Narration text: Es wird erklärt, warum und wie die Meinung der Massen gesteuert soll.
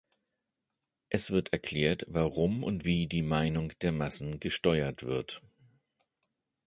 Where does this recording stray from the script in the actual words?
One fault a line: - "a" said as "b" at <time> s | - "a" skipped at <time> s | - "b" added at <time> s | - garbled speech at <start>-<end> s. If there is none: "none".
- "soll" said as "wird" at 5.0 s